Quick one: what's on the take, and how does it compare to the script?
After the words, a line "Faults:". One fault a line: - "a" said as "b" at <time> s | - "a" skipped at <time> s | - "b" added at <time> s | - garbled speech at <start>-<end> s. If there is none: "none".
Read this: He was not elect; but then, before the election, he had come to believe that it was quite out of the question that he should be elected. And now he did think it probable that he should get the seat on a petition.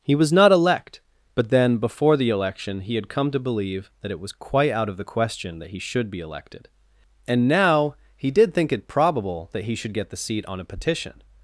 He was not elect; but then, before the election, he had come to believe that it was quite out of the question that he should be elected. And now he did think it probable that he should get the seat on a petition.
Faults:
none